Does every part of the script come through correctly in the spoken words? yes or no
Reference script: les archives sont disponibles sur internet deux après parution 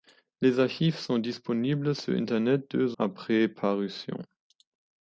yes